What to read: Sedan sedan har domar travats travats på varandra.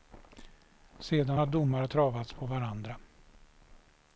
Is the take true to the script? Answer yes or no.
no